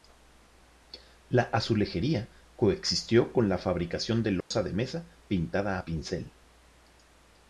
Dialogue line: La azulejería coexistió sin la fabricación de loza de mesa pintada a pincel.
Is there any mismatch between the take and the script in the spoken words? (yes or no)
yes